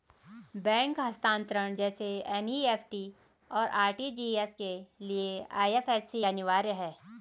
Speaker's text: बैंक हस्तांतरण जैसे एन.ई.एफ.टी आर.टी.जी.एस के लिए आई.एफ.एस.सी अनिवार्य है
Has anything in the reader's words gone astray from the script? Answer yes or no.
yes